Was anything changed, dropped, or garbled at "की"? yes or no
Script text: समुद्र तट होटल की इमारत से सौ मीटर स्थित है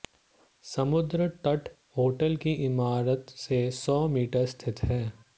no